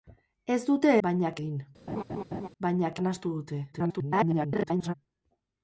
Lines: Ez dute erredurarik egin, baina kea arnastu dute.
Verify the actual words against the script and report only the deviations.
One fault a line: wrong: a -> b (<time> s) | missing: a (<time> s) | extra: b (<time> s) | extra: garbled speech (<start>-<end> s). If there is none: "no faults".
wrong: erredurarik -> baina (1.1 s)
missing: kea (3.0 s)
extra: garbled speech (3.7-4.9 s)